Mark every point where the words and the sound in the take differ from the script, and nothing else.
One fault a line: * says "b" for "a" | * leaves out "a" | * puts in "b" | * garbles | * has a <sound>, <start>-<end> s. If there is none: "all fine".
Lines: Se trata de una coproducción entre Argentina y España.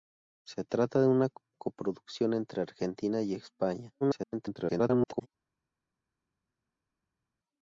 * garbles